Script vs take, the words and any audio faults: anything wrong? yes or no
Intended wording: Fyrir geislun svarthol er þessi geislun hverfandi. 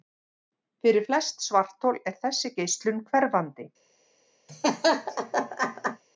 yes